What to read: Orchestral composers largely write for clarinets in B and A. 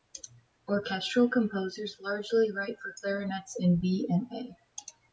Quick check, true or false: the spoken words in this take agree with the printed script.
true